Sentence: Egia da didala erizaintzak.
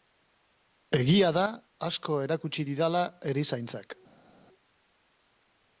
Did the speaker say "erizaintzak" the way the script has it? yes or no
yes